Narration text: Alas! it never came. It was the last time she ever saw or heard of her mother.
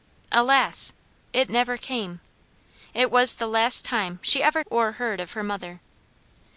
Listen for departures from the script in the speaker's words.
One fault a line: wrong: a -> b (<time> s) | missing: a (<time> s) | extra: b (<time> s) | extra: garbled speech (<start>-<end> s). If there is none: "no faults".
missing: saw (4.6 s)